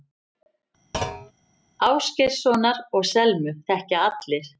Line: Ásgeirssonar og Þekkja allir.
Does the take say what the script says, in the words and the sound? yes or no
no